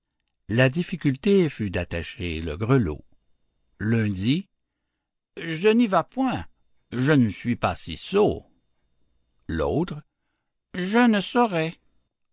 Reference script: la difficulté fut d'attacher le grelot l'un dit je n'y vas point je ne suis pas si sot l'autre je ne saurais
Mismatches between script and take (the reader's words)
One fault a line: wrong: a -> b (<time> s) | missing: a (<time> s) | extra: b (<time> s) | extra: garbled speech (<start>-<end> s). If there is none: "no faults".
no faults